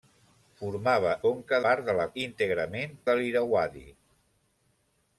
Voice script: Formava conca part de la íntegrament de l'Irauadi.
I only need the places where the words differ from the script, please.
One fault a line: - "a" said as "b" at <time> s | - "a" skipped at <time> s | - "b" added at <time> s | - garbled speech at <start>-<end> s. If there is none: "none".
none